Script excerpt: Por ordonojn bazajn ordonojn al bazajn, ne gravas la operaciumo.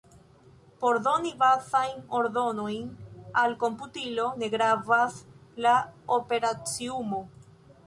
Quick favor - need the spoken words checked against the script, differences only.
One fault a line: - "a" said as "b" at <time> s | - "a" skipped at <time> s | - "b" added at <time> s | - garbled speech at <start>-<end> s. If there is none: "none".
- "ordonojn" said as "doni" at 1.1 s
- "bazajn" said as "komputilo" at 3.6 s